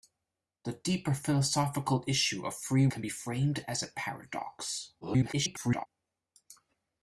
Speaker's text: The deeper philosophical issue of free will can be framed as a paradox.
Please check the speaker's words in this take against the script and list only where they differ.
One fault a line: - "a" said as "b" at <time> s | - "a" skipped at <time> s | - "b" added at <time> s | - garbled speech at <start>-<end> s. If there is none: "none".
- "will" skipped at 2.9 s
- garbled speech at 5.0-5.9 s